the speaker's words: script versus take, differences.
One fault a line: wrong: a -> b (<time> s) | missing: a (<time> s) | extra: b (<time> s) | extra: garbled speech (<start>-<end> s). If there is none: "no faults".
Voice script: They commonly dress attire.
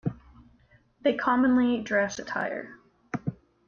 no faults